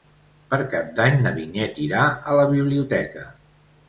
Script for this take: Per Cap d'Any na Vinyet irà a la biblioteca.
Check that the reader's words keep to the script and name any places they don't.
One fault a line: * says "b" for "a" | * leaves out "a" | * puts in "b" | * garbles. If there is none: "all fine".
all fine